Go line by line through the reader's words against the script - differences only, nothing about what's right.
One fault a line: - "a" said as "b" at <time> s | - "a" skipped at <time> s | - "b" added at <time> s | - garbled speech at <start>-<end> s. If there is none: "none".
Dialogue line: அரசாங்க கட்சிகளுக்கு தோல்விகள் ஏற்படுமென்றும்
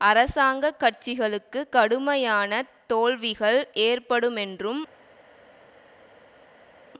- "கடுமையான" added at 1.7 s